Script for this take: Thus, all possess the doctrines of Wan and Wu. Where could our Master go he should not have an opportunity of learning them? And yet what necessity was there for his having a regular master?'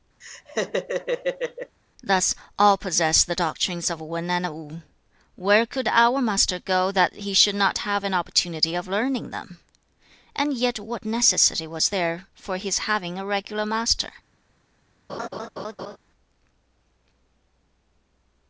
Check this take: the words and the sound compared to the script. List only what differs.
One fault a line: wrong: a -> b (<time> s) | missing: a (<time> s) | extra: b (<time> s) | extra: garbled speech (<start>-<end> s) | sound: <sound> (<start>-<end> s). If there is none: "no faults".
sound: laugh (0.2-1.8 s)
extra: that (6.9 s)
sound: laugh (15.1-16.0 s)